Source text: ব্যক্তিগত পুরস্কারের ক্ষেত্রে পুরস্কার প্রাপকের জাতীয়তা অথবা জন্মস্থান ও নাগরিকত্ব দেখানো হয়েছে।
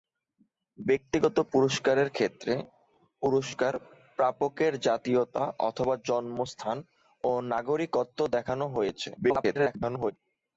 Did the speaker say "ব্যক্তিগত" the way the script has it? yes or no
yes